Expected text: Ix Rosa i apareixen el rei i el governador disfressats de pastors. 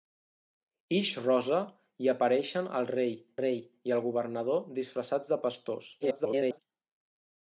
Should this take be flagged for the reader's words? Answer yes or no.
yes